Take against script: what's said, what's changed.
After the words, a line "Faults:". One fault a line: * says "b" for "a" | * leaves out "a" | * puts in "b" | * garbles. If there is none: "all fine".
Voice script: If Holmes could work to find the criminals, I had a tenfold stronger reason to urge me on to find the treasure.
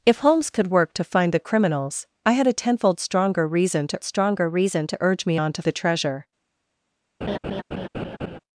If Holmes could work to find the criminals, I had a tenfold stronger reason to stronger reason to urge me on to the treasure.
Faults:
* puts in "stronger reason to"
* leaves out "find"